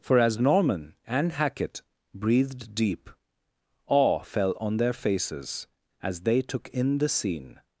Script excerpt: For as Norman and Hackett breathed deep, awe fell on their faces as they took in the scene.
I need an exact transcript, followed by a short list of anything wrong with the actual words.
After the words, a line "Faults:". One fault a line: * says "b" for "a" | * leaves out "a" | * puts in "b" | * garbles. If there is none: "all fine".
For as Norman and Hackett breathed deep, awe fell on their faces as they took in the scene.
Faults:
all fine